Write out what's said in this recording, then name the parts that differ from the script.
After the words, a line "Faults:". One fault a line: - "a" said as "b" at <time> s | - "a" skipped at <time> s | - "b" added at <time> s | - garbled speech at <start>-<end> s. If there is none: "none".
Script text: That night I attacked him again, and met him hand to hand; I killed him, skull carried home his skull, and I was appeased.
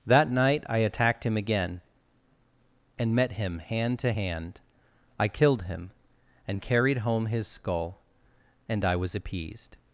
That night I attacked him again, and met him hand to hand; I killed him, and carried home his skull, and I was appeased.
Faults:
- "skull" said as "and" at 6.5 s